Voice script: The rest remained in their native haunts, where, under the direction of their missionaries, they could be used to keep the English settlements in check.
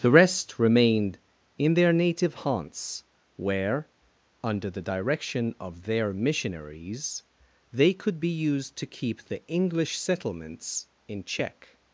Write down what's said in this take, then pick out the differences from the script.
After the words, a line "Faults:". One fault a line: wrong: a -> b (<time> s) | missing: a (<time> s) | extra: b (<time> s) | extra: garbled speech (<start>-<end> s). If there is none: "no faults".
The rest remained in their native haunts, where, under the direction of their missionaries, they could be used to keep the English settlements in check.
Faults:
no faults